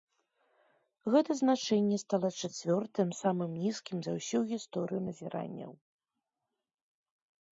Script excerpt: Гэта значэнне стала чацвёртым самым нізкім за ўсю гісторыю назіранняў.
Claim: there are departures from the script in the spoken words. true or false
false